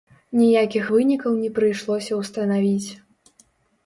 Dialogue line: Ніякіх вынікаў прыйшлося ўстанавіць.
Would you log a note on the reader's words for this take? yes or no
yes